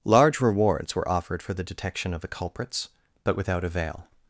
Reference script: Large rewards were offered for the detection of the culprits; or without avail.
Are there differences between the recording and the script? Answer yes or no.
yes